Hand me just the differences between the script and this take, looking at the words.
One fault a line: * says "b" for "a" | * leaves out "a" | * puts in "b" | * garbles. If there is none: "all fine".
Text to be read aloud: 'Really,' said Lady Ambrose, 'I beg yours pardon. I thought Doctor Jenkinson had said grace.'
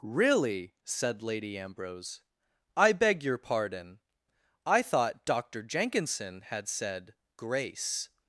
* says "your" for "yours"